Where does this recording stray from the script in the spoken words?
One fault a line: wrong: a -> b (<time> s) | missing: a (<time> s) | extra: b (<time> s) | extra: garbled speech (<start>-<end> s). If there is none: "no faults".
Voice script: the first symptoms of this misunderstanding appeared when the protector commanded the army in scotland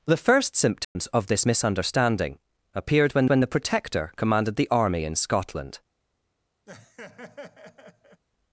extra: when (3.3 s)